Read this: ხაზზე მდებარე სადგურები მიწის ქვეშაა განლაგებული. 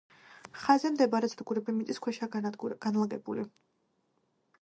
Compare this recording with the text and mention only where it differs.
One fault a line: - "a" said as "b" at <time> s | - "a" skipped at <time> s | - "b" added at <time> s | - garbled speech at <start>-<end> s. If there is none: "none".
none